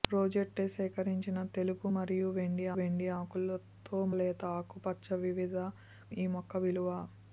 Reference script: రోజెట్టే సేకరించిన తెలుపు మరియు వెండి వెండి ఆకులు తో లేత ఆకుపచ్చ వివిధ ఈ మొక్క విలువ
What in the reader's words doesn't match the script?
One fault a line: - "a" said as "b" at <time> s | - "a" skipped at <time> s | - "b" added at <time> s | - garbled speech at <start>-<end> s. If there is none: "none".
none